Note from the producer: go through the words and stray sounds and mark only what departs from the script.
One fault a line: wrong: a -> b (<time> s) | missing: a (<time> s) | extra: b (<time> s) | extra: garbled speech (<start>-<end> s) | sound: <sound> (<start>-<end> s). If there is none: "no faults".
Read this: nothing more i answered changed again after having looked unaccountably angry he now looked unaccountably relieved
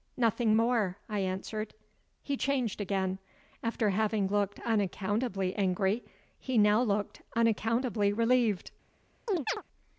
extra: he (2.2 s)
sound: chirp (9.3-9.6 s)